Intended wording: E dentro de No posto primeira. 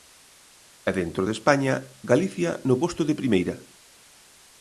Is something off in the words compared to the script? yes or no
yes